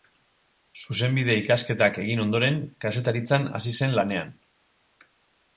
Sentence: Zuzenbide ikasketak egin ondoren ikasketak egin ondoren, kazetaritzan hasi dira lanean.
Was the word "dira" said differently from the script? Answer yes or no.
yes